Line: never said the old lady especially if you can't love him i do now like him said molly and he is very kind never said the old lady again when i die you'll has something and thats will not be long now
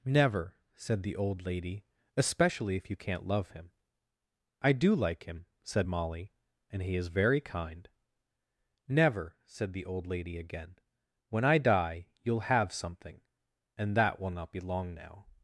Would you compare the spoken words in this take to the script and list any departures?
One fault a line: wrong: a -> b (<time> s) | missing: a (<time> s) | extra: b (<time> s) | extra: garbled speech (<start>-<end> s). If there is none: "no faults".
missing: now (5.0 s)
wrong: has -> have (12.4 s)
wrong: thats -> that (14.0 s)